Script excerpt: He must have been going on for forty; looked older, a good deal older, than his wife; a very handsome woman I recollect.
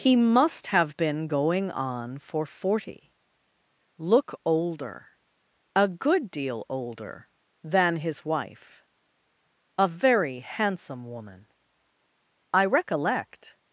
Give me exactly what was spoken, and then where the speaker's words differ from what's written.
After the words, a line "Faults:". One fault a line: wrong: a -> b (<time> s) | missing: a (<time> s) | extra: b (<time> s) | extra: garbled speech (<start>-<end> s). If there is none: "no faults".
He must have been going on for forty; look older, a good deal older, than his wife; a very handsome woman I recollect.
Faults:
wrong: looked -> look (4.0 s)